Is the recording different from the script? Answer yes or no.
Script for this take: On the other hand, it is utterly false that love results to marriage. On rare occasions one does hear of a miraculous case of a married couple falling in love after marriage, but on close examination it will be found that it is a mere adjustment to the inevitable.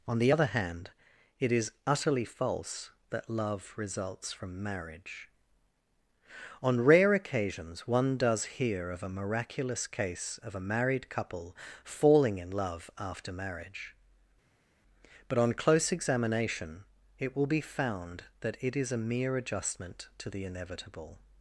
yes